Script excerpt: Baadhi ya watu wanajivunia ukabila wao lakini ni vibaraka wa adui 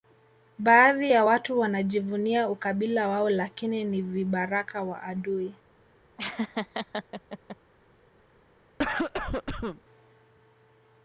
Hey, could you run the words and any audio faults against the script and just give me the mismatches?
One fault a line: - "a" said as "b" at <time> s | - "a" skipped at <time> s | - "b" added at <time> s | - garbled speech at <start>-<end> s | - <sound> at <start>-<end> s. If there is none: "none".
- laugh at 6.2-7.6 s
- cough at 8.8-9.8 s